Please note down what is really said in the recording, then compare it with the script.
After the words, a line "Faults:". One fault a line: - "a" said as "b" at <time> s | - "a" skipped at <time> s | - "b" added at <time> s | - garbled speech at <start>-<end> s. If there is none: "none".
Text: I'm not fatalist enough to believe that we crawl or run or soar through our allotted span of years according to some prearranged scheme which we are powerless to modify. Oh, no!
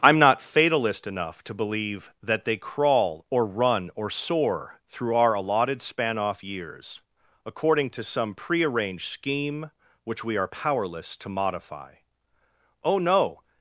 I'm not fatalist enough to believe that they crawl or run or soar through our allotted span off years according to some prearranged scheme which we are powerless to modify. Oh, no!
Faults:
- "we" said as "they" at 2.4 s
- "of" said as "off" at 6.2 s